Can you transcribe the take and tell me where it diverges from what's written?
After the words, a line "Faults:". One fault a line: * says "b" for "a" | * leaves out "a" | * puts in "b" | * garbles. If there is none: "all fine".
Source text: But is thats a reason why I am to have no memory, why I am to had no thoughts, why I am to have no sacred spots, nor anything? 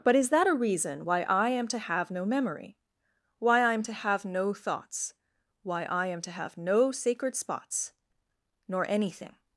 But is that a reason why I am to have no memory, why I am to have no thoughts, why I am to have no sacred spots, nor anything?
Faults:
* says "that" for "thats"
* says "have" for "had"